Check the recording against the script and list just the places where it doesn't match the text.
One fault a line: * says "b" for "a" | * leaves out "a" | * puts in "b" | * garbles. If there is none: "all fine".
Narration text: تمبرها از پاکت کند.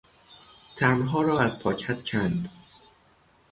* puts in "را"